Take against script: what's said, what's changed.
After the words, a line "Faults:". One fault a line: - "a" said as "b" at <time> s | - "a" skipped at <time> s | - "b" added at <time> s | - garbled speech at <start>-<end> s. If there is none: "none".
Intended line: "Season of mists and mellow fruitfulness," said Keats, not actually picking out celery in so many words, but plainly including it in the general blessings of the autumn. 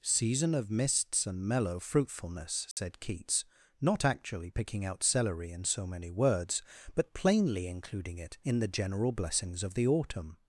"Season of mists and mellow fruitfulness," said Keats, not actually picking out celery in so many words, but plainly including it in the general blessings of the autumn.
Faults:
none